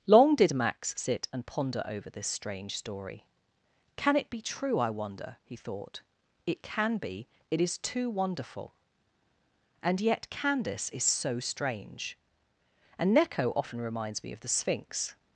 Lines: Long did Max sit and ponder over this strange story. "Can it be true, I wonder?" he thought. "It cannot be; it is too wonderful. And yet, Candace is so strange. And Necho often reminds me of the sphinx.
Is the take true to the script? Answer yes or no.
no